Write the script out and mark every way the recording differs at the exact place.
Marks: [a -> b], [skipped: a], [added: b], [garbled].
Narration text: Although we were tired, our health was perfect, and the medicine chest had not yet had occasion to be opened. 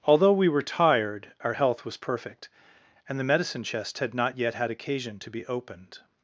Although we were tired, our health was perfect, and the medicine chest had not yet had occasion to be opened.